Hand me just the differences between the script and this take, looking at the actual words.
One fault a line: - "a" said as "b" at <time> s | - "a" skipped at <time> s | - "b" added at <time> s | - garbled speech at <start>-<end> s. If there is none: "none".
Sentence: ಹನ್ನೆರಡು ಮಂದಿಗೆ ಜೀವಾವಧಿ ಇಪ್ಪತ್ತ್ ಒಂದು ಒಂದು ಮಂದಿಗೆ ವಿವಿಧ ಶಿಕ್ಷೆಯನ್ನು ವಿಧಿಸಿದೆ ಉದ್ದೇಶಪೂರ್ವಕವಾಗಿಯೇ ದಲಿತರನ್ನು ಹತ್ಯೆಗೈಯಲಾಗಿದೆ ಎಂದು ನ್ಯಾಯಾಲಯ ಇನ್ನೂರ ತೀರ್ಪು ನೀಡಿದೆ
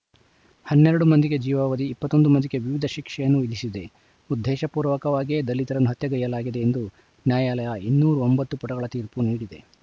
- "ಒಂದು" skipped at 2.3 s
- "ಒಂಬತ್ತು ಪುಟಗಳ" added at 8.3 s